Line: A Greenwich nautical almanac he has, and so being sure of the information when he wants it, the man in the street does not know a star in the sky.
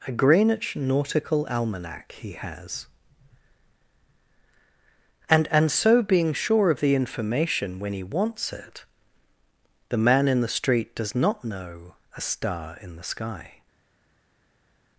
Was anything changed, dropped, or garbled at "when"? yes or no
no